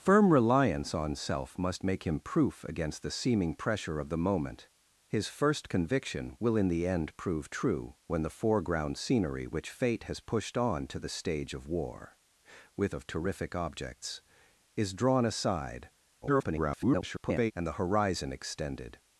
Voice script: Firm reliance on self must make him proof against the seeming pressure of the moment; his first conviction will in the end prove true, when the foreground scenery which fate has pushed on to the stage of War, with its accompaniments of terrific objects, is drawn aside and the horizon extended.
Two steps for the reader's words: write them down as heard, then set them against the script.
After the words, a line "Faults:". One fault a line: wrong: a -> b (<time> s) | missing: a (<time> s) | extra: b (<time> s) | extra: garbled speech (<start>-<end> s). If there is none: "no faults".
Firm reliance on self must make him proof against the seeming pressure of the moment; his first conviction will in the end prove true, when the foreground scenery which fate has pushed on to the stage of War, with of terrific objects, is drawn aside [garbled] and the horizon extended.
Faults:
missing: its accompaniments (12.9 s)
extra: garbled speech (16.2-17.5 s)